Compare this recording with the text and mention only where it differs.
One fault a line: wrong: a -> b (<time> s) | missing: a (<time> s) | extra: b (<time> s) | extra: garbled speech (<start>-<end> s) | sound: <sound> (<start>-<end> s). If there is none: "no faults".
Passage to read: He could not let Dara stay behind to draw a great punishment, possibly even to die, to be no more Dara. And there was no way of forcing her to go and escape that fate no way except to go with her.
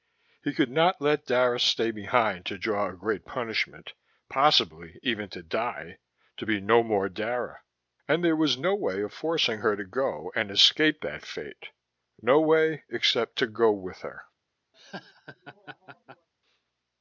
sound: laugh (14.7-16.3 s)